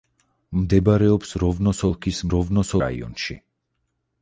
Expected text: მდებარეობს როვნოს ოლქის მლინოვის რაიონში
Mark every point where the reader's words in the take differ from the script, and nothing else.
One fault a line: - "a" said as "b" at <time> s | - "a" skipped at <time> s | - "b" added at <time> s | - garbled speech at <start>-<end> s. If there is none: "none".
- "მლინოვის" said as "როვნოს" at 2.4 s